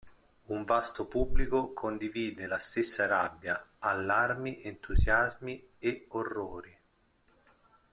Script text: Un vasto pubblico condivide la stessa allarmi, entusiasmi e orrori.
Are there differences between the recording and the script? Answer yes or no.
yes